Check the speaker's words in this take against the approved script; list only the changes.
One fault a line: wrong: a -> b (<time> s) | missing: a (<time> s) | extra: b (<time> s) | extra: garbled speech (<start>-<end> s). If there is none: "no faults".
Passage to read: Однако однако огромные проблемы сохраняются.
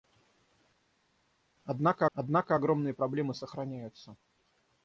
no faults